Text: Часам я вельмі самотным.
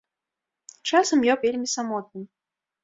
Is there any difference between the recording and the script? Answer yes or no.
no